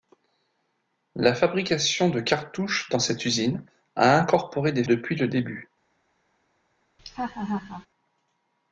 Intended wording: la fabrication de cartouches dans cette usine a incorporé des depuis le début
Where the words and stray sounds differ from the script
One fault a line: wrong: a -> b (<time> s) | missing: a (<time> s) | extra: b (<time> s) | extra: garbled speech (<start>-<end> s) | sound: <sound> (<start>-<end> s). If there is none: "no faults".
sound: laugh (7.0-7.9 s)